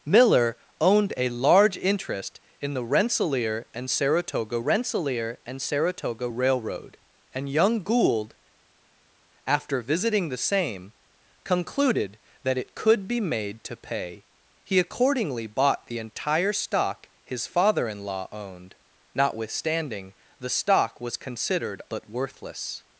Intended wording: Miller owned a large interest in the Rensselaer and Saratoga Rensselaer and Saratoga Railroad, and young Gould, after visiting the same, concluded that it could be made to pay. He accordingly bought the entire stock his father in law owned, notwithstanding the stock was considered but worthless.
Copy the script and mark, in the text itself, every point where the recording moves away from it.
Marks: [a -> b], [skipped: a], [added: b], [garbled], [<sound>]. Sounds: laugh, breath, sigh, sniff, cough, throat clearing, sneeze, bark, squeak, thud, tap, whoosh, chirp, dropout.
Miller owned a large interest in the Rensselaer and Saratoga Rensselaer and Saratoga Railroad, and young Gould, after visiting the same, concluded that it could be made to pay. He accordingly bought the entire stock his father in law owned, notwithstanding the stock was considered but worthless.